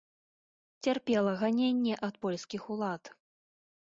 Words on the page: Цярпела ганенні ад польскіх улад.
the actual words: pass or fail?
pass